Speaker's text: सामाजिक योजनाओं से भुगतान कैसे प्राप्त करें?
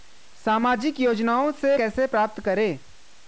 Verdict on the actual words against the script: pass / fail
fail